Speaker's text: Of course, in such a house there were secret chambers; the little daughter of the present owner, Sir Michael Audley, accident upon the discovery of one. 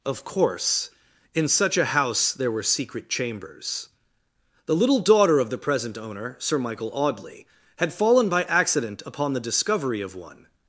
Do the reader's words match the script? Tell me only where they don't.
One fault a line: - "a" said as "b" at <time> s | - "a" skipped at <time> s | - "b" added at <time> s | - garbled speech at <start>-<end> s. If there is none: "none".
- "had fallen by" added at 7.8 s